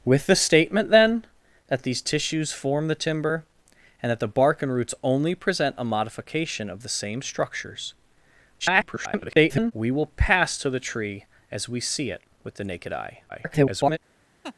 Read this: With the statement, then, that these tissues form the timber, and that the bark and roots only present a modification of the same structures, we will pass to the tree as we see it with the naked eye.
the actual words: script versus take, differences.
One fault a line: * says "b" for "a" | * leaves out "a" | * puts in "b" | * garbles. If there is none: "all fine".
* garbles
* garbles